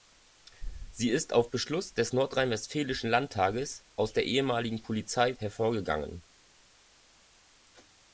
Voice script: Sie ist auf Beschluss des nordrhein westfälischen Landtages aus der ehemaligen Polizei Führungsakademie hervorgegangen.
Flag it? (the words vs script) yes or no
yes